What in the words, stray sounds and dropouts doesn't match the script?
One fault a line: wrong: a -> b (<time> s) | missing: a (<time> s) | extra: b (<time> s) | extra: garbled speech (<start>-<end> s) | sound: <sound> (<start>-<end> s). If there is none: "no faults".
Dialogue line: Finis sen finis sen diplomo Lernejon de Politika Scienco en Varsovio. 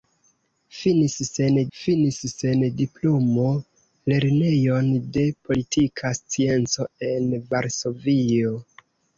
no faults